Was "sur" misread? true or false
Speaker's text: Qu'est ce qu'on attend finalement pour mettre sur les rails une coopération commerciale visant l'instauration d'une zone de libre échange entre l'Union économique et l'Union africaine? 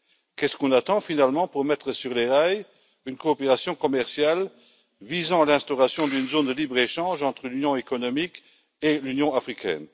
false